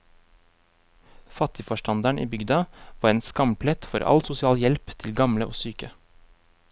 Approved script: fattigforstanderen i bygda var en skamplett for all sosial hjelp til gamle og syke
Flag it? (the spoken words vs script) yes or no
no